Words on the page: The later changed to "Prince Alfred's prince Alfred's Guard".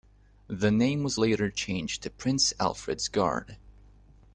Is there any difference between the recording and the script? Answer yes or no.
yes